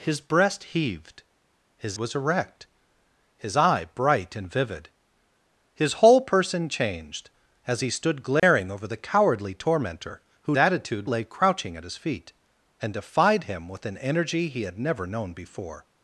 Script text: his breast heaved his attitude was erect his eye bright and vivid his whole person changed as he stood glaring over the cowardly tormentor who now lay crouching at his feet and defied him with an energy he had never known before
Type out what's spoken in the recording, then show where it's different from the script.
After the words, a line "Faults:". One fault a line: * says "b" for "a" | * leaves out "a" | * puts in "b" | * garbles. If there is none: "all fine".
his breast heaved his was erect his eye bright and vivid his whole person changed as he stood glaring over the cowardly tormentor who attitude lay crouching at his feet and defied him with an energy he had never known before
Faults:
* leaves out "attitude"
* says "attitude" for "now"